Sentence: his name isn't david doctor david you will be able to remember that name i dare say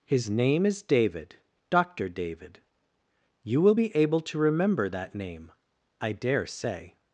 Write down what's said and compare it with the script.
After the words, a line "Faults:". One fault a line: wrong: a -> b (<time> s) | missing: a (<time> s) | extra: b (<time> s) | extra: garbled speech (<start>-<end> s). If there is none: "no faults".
his name is david doctor david you will be able to remember that name i dare say
Faults:
wrong: isn't -> is (0.7 s)